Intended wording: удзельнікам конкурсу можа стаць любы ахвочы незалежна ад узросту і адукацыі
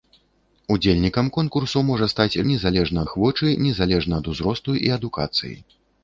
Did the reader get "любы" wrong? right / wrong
wrong